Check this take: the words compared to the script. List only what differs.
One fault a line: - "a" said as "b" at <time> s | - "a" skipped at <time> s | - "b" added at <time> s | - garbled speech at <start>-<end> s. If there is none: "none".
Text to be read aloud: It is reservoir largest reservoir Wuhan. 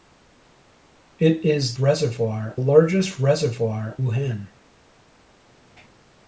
none